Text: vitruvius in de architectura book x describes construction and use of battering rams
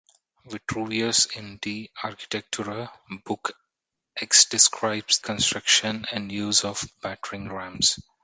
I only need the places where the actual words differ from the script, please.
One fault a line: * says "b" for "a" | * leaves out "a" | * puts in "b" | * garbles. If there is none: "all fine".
all fine